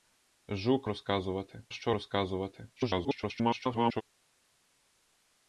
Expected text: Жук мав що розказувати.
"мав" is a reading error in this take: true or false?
true